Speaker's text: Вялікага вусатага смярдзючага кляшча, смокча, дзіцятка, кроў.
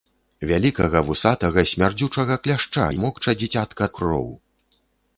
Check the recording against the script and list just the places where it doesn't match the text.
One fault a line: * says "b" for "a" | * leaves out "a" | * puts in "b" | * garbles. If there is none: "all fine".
all fine